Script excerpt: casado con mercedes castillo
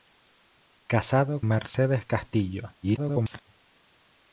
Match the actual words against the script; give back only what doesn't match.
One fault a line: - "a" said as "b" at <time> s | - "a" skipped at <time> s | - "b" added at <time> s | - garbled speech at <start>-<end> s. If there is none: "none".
- "con" skipped at 1.4 s
- garbled speech at 2.8-3.4 s